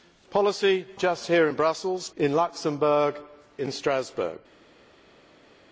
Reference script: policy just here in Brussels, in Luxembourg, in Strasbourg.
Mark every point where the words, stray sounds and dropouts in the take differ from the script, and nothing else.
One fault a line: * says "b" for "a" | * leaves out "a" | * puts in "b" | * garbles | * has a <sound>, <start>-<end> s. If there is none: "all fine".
all fine